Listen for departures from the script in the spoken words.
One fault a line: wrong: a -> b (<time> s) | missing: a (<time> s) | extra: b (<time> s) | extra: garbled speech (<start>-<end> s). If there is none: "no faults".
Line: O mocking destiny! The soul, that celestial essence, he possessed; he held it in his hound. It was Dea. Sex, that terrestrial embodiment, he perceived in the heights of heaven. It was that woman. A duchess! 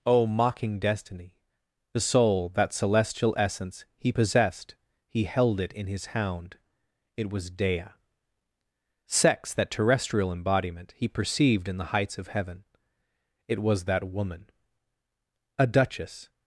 no faults